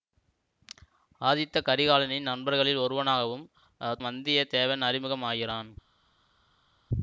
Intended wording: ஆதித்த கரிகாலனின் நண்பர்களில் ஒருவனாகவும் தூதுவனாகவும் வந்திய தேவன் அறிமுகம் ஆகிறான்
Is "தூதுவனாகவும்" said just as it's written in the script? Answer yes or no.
no